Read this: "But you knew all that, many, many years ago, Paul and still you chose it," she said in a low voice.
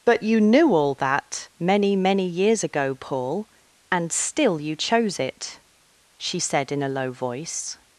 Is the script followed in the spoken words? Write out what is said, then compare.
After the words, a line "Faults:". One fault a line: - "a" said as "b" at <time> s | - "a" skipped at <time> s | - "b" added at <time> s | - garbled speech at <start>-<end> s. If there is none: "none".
"But you knew all that, many, many years ago, Paul and still you chose it," she said in a low voice.
Faults:
none